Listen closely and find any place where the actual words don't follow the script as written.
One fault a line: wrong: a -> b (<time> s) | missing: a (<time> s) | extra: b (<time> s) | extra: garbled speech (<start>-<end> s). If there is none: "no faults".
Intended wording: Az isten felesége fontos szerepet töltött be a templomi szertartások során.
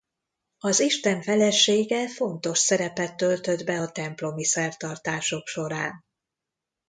no faults